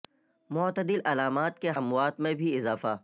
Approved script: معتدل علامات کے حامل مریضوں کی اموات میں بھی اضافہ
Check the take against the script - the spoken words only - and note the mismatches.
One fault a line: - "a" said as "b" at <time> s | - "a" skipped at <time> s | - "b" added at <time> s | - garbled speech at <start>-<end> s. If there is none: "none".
- "حامل مریضوں کی" skipped at 1.7 s